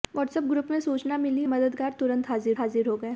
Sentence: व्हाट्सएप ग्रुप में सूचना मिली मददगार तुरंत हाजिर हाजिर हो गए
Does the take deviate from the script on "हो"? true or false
false